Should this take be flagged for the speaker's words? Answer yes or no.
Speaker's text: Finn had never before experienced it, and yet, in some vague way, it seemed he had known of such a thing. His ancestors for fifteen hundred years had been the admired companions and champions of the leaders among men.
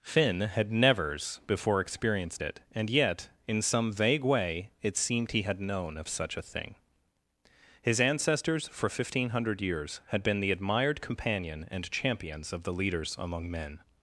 yes